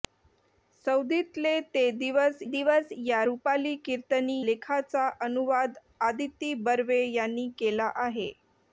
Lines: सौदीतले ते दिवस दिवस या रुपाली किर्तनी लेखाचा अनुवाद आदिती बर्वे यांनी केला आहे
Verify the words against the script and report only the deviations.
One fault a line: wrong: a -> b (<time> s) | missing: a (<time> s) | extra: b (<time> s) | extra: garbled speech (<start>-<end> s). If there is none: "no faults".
no faults